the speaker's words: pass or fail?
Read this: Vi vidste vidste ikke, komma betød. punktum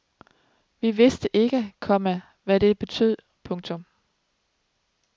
fail